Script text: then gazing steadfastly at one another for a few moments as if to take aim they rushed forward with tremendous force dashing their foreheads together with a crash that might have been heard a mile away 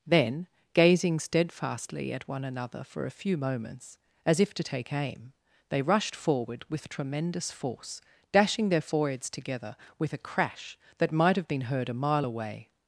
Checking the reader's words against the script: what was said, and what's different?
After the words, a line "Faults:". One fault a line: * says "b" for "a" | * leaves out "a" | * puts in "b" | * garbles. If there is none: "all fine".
then gazing steadfastly at one another for a few moments as if to take aim they rushed forward with tremendous force dashing their foreheads together with a crash that might have been heard a mile away
Faults:
all fine